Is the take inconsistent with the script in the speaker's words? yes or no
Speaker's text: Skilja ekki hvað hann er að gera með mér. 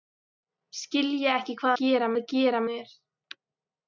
yes